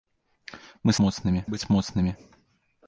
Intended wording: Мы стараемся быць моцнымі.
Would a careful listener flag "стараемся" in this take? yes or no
yes